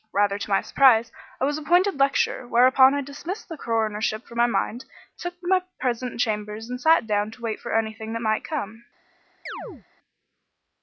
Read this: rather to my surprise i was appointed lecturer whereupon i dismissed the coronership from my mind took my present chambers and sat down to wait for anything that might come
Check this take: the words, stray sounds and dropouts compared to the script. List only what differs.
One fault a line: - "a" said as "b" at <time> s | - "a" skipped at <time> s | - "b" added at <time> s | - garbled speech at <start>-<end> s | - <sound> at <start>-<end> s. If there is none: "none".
- chirp at 9.5-9.8 s